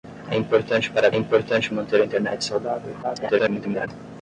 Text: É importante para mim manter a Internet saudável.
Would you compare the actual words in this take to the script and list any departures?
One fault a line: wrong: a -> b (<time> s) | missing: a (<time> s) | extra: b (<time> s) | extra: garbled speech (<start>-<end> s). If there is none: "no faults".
wrong: mim -> importante (1.1 s)
extra: garbled speech (3.0-3.9 s)